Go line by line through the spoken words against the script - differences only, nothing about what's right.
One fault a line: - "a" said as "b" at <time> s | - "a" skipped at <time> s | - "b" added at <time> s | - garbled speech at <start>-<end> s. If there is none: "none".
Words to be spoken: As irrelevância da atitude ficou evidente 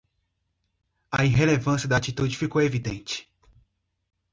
- "As" said as "A" at 1.1 s